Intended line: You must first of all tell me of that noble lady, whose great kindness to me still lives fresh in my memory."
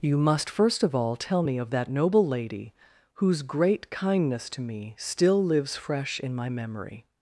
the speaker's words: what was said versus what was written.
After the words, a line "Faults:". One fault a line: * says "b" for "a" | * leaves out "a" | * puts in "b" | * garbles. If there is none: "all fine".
You must first of all tell me of that noble lady, whose great kindness to me still lives fresh in my memory."
Faults:
all fine